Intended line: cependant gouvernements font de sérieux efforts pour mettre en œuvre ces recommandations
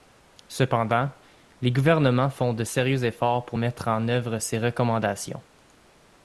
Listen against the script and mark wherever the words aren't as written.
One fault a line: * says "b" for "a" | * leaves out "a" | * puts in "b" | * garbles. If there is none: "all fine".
* puts in "les"